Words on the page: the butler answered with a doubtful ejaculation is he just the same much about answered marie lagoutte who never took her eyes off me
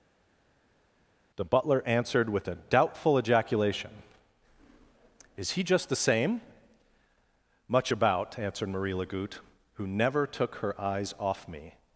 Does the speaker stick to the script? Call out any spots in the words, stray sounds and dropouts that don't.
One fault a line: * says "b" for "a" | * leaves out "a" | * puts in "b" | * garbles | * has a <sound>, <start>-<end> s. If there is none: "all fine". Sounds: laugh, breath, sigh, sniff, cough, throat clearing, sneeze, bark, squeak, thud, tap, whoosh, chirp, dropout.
all fine